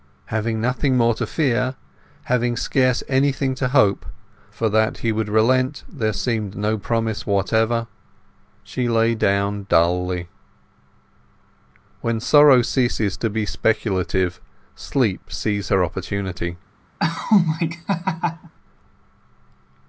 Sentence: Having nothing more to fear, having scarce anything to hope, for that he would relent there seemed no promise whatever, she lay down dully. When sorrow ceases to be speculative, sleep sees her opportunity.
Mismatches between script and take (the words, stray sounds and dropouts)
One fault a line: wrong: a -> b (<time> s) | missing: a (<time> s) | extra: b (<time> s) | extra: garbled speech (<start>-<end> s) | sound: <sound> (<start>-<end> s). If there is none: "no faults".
sound: laugh (17.0-18.5 s)